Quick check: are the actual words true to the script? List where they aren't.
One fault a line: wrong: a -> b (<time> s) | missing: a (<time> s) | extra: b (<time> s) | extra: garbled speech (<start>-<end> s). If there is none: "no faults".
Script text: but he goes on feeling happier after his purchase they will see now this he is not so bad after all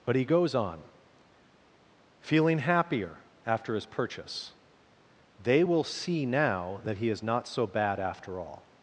wrong: this -> that (6.8 s)